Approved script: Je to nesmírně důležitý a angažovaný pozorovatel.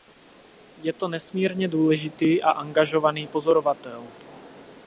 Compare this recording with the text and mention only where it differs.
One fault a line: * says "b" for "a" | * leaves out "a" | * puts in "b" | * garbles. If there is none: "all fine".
all fine